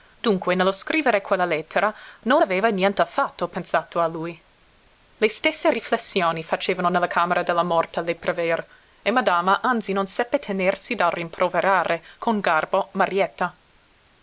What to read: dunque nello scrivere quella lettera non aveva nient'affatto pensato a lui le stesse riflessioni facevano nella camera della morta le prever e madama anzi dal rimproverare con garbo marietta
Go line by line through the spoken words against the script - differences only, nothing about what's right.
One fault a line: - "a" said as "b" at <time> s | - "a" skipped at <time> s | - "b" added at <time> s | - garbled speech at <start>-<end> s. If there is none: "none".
- "non seppe tenersi" added at 9.9 s